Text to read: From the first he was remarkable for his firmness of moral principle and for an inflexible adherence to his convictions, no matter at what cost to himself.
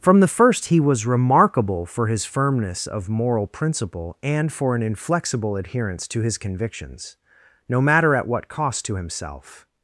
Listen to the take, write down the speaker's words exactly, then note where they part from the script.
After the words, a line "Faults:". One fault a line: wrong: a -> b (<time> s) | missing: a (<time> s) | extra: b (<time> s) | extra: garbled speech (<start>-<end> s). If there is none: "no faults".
From the first he was remarkable for his firmness of moral principle and for an inflexible adherence to his convictions, no matter at what cost to himself.
Faults:
no faults